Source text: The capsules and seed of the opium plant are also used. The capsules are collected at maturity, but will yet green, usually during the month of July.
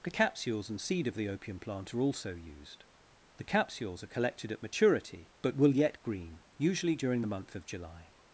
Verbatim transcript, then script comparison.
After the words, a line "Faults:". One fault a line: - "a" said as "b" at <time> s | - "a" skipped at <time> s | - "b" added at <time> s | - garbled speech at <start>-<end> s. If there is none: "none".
The capsules and seed of the opium plant are also used. The capsules are collected at maturity, but will yet green, usually during the month of July.
Faults:
none